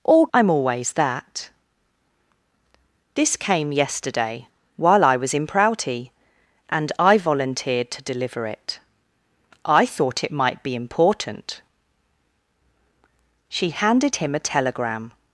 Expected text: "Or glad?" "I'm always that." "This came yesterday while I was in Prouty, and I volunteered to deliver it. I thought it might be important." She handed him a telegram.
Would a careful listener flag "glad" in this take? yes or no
yes